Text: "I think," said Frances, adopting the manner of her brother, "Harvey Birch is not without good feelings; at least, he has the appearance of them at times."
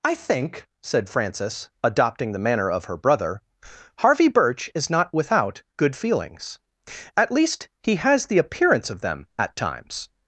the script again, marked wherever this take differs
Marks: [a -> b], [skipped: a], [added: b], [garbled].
"I think," said Frances, adopting the manner of her brother, "Harvey Birch is not without good feelings; at least, he has the appearance of them at times."